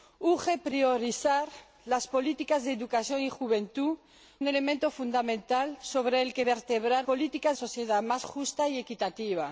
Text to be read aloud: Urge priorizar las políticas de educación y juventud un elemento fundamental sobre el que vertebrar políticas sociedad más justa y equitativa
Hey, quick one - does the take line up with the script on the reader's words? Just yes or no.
yes